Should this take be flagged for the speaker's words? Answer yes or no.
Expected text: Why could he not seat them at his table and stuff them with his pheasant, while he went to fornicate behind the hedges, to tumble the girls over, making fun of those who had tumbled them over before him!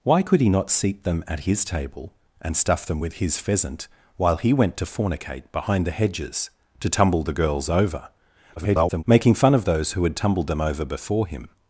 yes